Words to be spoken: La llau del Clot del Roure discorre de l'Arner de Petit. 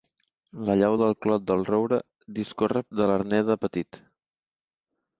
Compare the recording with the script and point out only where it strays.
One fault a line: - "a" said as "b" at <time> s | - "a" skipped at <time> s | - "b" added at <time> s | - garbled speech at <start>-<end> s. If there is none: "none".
none